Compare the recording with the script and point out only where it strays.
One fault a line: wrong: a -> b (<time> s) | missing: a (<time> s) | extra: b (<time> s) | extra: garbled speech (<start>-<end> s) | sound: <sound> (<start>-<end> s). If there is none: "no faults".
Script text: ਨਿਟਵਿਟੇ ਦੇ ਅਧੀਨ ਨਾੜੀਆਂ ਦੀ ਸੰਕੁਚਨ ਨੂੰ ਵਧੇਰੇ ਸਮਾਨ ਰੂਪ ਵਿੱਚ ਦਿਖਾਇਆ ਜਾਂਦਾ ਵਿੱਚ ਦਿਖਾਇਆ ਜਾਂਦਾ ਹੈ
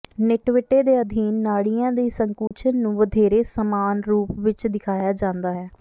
sound: dropout (2.5-2.5 s)
missing: ਵਿੱਚ ਦਿਖਾਇਆ ਜਾਂਦਾ (5.5 s)